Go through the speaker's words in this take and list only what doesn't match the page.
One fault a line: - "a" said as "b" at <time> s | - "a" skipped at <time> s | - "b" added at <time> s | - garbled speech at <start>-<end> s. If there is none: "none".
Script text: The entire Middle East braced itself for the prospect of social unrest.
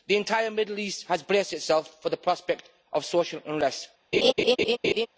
- "has" added at 1.1 s